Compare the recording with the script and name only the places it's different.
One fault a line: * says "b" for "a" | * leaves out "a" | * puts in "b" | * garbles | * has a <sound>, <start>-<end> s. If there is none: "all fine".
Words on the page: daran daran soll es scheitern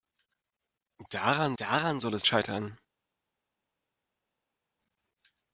all fine